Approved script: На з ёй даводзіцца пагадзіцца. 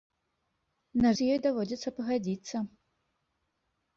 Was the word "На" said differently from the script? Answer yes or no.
no